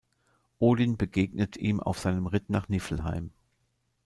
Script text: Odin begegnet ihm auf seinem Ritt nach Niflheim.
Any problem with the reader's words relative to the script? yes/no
no